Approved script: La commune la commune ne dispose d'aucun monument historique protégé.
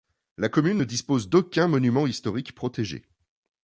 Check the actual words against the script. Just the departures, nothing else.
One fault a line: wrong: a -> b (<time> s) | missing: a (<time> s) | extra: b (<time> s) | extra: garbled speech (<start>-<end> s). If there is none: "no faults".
missing: la commune (0.8 s)